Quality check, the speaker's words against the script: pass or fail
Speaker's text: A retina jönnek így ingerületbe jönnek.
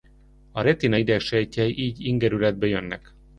fail